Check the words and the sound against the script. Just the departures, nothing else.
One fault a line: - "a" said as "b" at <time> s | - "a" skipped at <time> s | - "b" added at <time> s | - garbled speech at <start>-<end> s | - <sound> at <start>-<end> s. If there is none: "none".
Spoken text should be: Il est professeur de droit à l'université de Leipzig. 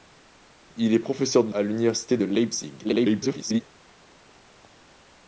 - "droit" skipped at 1.5 s
- garbled speech at 2.8-3.6 s